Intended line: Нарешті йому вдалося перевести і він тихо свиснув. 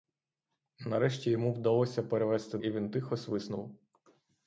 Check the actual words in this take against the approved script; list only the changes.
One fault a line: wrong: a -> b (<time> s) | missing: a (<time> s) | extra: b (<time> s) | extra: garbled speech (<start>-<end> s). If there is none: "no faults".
no faults